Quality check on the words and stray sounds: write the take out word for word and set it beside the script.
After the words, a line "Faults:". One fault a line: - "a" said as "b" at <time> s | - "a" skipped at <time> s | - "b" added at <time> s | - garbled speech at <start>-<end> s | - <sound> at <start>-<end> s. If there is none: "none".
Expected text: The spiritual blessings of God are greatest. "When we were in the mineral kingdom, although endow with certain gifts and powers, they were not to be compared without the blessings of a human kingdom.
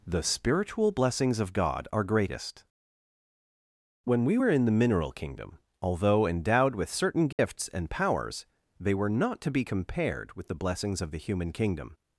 The spiritual blessings of God are greatest. "When we were in the mineral kingdom, although endowed with certain gifts and powers, they were not to be compared with the blessings of the human kingdom.
Faults:
- "endow" said as "endowed" at 6.3 s
- dropout at 7.3-7.4 s
- "without" said as "with" at 10.3 s
- "a" said as "the" at 11.1 s